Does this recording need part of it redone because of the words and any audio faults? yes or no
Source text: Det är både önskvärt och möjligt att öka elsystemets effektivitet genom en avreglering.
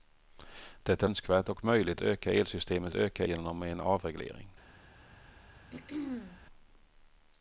yes